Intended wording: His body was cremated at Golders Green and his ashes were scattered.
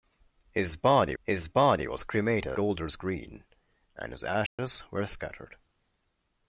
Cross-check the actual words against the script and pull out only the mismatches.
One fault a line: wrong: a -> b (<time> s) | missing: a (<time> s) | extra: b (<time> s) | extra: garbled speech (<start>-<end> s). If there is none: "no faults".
extra: his body (1.2 s)
missing: at (2.5 s)